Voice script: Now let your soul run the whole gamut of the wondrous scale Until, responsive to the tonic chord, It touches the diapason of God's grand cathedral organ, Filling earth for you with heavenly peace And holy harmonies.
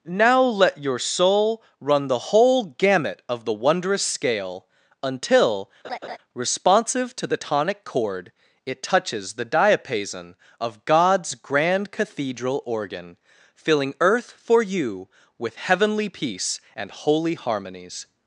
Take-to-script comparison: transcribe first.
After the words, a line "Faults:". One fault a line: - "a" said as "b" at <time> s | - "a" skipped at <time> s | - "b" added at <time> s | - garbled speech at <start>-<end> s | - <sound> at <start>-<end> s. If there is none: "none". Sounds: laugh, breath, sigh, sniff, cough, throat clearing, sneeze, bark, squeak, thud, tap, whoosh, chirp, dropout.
Now let your soul run the whole gamut of the wondrous scale Until, responsive to the tonic chord, It touches the diapason of God's grand cathedral organ, Filling earth for you with heavenly peace And holy harmonies.
Faults:
- laugh at 5.8-6.2 s